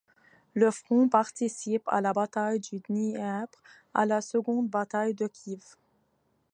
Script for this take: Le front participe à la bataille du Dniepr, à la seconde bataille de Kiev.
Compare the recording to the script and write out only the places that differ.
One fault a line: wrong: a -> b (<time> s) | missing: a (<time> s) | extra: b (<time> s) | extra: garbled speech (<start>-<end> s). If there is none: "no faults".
no faults